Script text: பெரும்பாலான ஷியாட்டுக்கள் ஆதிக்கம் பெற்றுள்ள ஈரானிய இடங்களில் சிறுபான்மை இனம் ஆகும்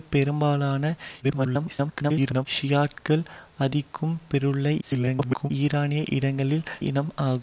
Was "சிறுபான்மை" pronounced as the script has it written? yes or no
no